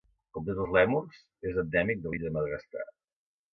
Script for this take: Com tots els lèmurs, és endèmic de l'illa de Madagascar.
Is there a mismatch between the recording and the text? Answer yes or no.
no